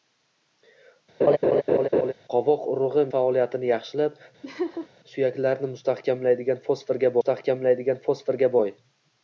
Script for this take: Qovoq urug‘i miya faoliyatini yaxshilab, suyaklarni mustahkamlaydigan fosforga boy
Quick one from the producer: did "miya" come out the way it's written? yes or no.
no